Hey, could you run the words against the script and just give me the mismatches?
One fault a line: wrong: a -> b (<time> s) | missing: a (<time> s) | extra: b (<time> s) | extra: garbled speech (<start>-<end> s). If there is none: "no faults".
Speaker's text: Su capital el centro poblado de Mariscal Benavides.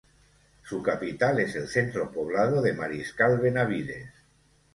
extra: es (1.4 s)